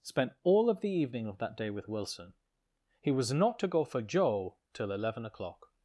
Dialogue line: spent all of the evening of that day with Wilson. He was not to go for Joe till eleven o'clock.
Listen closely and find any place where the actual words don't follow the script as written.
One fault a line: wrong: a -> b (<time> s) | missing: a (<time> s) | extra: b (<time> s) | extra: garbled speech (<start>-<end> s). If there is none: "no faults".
no faults